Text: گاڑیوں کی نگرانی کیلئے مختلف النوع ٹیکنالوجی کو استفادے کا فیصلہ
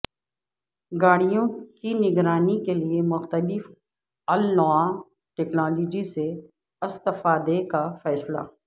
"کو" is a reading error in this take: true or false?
true